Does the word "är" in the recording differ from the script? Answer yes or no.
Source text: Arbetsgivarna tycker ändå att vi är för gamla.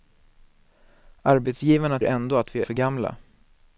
yes